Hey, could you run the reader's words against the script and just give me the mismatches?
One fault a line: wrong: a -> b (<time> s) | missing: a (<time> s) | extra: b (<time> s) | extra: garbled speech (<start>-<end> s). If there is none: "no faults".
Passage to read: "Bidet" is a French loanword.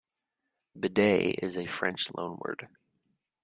no faults